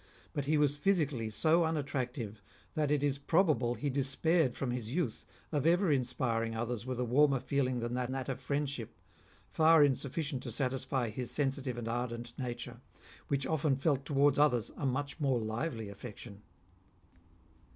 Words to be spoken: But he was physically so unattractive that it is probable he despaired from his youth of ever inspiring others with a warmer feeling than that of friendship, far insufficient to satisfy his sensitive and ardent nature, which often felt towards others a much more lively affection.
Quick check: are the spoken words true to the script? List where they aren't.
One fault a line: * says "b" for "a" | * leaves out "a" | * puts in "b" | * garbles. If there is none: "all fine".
* puts in "that"